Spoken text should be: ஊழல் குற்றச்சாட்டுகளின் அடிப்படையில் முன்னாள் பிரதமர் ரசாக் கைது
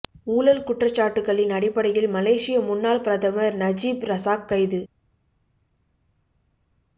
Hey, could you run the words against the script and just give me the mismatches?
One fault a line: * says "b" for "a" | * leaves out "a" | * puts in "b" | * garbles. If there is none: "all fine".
* puts in "மலேசிய"
* puts in "நஜீப்"